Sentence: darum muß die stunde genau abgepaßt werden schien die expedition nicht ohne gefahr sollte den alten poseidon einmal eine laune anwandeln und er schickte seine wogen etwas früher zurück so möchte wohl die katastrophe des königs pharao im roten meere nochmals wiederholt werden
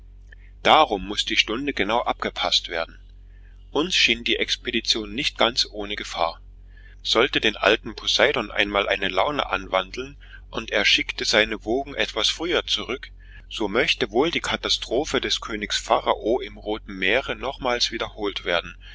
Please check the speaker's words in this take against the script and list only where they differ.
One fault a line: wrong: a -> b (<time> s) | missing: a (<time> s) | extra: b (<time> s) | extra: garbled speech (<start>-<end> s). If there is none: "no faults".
extra: uns (3.7 s)
extra: ganz (5.4 s)